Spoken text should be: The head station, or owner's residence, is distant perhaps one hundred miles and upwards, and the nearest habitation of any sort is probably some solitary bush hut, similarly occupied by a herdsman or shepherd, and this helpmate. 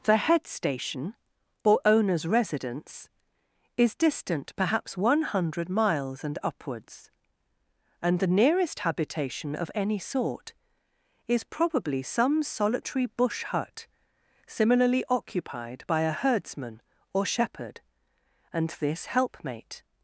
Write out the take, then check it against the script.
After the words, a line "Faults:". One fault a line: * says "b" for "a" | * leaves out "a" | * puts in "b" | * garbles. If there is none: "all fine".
The head station, or owner's residence, is distant perhaps one hundred miles and upwards, and the nearest habitation of any sort is probably some solitary bush hut, similarly occupied by a herdsman or shepherd, and this helpmate.
Faults:
all fine